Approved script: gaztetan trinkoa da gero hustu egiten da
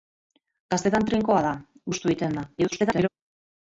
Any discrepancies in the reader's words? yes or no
yes